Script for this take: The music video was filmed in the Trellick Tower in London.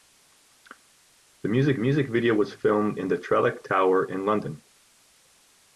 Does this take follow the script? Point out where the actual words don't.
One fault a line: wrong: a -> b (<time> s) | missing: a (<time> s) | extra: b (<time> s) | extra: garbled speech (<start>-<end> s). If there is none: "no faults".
extra: music (1.8 s)